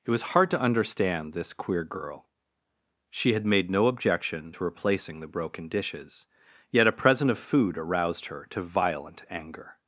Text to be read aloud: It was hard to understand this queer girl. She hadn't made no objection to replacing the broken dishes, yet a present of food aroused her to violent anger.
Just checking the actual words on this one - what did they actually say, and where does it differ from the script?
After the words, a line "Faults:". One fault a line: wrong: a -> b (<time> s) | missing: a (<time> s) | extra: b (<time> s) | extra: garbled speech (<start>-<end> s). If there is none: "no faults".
It was hard to understand this queer girl. She had made no objection to replacing the broken dishes, yet a present of food aroused her to violent anger.
Faults:
wrong: hadn't -> had (3.3 s)